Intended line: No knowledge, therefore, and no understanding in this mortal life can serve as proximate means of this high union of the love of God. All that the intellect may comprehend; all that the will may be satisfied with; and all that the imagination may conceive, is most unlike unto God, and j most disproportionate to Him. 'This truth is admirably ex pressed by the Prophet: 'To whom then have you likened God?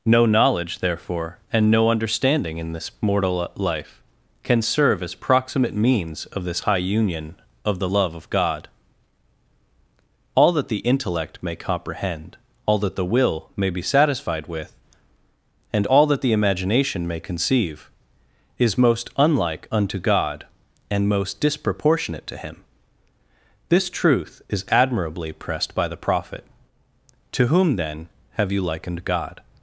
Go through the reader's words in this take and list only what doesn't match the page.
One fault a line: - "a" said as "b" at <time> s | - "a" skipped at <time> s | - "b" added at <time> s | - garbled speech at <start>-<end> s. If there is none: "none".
- "j" skipped at 21.1 s
- "ex" skipped at 25.3 s